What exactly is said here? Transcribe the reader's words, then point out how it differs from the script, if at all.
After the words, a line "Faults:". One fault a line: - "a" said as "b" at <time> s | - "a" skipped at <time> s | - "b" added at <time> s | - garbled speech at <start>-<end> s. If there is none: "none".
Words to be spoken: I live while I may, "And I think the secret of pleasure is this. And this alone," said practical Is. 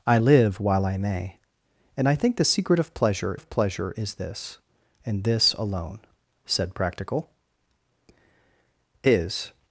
I live while I may, "And I think the secret of pleasure of pleasure is this. And this alone," said practical Is.
Faults:
- "of pleasure" added at 3.3 s